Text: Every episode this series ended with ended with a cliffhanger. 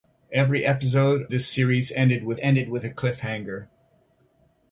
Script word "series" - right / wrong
right